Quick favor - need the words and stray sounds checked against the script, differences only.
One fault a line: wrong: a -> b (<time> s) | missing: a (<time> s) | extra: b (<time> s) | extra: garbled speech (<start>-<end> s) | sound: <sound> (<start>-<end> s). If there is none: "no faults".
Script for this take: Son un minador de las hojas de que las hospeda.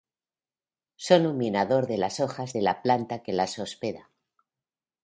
extra: la planta (2.6 s)